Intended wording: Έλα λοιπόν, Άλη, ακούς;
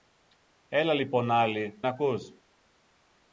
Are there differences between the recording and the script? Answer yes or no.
no